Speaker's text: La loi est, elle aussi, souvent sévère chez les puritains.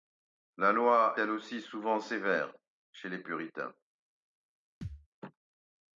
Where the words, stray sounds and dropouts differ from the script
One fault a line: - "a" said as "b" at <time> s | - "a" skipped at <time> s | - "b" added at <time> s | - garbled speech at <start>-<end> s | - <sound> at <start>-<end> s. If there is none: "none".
- "est" skipped at 1.1 s
- thud at 4.8-5.1 s